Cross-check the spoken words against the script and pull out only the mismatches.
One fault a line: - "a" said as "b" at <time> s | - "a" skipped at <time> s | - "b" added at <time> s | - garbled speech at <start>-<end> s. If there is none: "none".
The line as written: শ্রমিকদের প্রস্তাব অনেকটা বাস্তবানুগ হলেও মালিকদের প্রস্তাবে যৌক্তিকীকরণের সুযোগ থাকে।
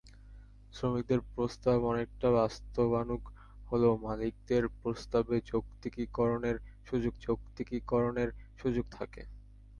- "যৌক্তিকীকরণের সুযোগ" added at 7.2 s